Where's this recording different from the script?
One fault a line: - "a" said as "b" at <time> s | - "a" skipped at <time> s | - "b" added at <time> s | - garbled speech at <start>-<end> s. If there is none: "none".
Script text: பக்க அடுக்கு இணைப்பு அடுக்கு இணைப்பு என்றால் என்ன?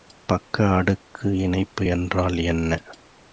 - "அடுக்கு இணைப்பு" skipped at 1.9 s